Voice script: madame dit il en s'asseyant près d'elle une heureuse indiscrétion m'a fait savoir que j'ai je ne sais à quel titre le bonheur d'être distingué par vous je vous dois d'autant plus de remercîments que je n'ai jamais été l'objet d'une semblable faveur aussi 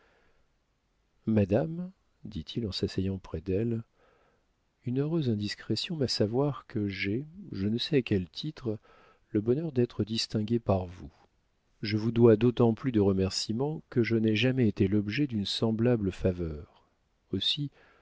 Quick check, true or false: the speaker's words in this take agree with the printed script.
false